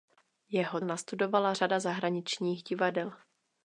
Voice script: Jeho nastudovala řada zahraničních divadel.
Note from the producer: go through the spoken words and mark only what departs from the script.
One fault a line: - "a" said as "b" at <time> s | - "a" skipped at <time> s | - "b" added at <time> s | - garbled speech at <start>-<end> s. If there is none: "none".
none